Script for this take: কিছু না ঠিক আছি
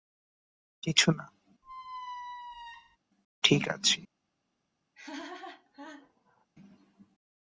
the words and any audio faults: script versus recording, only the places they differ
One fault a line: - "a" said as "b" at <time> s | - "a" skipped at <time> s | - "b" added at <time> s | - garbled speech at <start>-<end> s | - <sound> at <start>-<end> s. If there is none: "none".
- squeak at 1.6-3.0 s
- laugh at 4.9-6.5 s